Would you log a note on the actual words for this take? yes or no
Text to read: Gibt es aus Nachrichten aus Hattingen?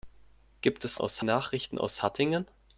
no